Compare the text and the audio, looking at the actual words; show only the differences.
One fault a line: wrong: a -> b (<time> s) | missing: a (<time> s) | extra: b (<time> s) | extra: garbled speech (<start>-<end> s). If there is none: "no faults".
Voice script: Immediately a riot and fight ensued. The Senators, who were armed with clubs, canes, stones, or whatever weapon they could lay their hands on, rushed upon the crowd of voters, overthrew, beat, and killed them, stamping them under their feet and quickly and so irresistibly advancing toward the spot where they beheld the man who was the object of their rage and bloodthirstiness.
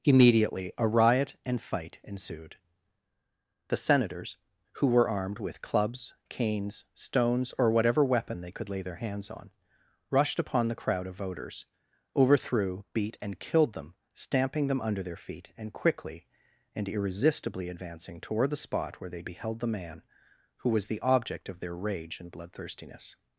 missing: so (16.9 s)